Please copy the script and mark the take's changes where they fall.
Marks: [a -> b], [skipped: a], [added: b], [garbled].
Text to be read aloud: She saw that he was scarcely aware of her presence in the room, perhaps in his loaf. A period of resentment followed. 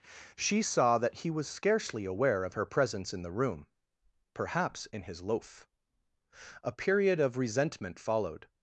She saw that he was scarcely aware of her presence in the room, perhaps in his loaf. A period of resentment followed.